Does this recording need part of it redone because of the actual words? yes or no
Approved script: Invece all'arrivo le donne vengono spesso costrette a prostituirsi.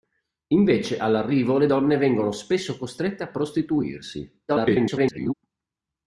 yes